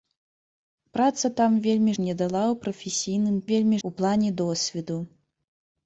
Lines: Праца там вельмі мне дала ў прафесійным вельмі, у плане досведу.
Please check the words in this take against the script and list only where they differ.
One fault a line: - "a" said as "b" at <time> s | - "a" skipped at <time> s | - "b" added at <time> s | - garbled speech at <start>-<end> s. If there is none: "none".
none